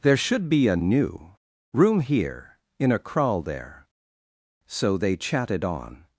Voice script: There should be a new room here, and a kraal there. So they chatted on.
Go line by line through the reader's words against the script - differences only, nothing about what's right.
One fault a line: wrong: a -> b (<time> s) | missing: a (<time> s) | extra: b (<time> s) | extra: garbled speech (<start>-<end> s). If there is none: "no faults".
wrong: and -> in (2.8 s)